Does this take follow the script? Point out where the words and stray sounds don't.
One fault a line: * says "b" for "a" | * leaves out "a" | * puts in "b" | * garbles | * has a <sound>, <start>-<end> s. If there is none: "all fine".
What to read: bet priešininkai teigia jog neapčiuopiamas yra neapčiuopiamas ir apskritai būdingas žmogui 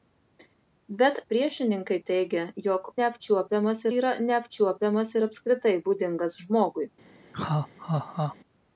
* has a laugh, 7.3-8.4 s